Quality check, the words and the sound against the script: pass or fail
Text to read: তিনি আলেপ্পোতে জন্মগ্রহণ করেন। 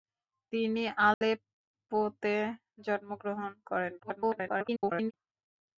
fail